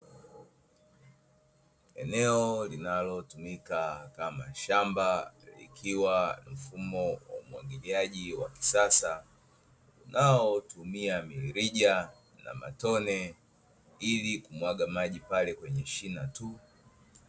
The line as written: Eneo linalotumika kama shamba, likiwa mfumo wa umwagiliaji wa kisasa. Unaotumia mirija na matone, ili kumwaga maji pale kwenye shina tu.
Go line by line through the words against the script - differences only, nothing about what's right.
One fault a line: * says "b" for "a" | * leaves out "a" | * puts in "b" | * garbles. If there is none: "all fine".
all fine